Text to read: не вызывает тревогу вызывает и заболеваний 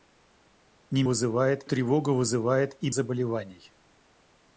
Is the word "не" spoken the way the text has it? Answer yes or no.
yes